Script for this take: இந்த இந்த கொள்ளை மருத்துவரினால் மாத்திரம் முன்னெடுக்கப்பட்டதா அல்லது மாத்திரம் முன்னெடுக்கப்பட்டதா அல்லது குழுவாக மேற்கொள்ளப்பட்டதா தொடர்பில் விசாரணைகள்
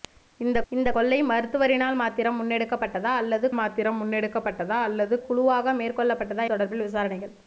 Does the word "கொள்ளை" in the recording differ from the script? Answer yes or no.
no